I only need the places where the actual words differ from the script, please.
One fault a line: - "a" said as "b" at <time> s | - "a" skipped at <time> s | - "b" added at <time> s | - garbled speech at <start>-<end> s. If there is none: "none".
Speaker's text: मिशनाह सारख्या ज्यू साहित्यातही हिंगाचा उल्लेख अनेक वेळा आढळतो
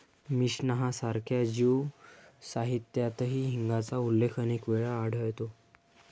none